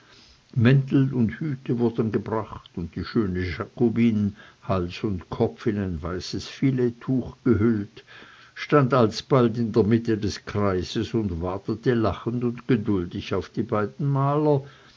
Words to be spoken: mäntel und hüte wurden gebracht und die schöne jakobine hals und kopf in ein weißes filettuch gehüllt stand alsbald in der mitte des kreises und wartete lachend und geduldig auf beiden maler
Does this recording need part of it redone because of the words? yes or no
yes